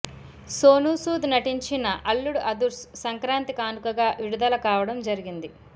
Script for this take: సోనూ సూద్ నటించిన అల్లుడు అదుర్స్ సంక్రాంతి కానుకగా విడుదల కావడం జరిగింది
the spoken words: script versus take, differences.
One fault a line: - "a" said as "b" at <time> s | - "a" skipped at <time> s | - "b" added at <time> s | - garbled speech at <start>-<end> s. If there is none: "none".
none